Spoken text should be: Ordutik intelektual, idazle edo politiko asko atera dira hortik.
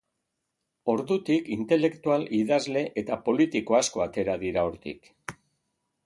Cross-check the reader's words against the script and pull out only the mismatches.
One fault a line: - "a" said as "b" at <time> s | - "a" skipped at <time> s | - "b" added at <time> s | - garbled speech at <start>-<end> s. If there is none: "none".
- "edo" said as "eta" at 3.0 s